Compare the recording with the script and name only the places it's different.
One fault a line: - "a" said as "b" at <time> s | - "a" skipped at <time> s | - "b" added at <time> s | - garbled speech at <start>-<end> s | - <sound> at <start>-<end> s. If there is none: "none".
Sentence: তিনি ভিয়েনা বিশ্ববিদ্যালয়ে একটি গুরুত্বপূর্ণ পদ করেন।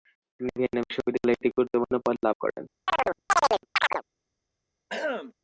- "লাভ" added at 2.2 s
- chirp at 2.9-4.0 s
- throat clearing at 4.9-5.3 s